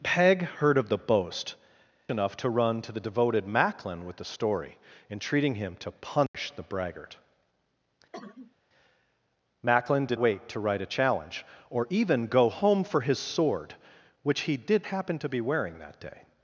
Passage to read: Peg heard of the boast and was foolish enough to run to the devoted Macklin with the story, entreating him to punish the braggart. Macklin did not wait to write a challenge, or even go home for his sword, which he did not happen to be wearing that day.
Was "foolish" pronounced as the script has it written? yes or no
no